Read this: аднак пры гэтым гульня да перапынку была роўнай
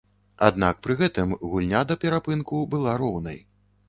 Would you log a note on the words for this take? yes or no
no